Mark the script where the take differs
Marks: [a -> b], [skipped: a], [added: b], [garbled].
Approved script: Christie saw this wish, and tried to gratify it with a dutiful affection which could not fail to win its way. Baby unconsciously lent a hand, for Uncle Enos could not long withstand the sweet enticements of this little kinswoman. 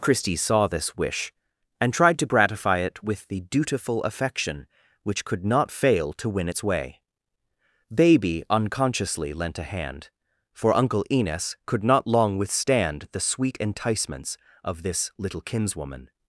Christie saw this wish, and tried to gratify it with [a -> the] dutiful affection which could not fail to win its way. Baby unconsciously lent a hand, for Uncle Enos could not long withstand the sweet enticements of this little kinswoman.